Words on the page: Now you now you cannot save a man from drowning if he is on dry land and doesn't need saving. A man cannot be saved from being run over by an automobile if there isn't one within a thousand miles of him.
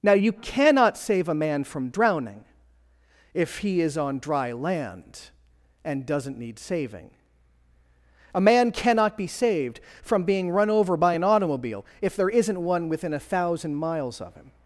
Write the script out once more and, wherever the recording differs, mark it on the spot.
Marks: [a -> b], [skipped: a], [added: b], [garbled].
Now you [skipped: now you] cannot save a man from drowning if he is on dry land and doesn't need saving. A man cannot be saved from being run over by an automobile if there isn't one within a thousand miles of him.